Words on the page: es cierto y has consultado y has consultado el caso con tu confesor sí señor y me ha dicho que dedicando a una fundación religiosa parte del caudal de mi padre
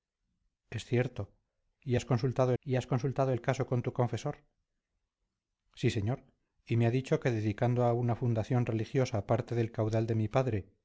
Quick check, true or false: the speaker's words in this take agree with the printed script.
true